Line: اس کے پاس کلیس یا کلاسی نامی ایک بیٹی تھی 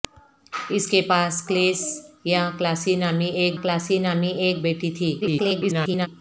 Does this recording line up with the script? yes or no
no